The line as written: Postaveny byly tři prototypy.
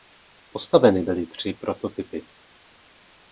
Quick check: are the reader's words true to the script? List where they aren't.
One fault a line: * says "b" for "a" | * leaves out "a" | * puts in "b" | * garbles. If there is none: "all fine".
all fine